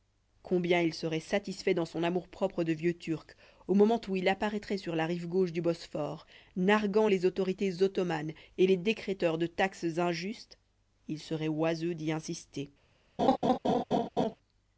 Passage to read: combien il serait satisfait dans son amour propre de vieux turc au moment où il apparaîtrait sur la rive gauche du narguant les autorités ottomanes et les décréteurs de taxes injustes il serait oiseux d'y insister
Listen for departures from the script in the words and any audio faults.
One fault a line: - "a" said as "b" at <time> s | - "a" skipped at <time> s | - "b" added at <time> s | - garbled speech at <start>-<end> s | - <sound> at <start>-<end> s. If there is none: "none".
- "bosphore" added at 5.6 s
- laugh at 13.2-14.4 s